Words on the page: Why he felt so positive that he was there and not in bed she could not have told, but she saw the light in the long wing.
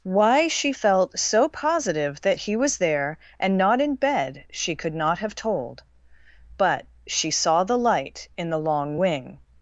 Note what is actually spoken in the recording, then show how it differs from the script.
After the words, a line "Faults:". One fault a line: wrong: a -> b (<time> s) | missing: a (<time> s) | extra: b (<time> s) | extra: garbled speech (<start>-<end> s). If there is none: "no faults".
Why she felt so positive that he was there and not in bed she could not have told, but she saw the light in the long wing.
Faults:
wrong: he -> she (0.5 s)